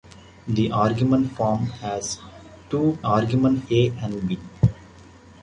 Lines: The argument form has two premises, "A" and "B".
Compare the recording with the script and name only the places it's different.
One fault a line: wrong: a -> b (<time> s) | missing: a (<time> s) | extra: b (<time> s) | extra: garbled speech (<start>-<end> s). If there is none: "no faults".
wrong: premises -> argument (3.1 s)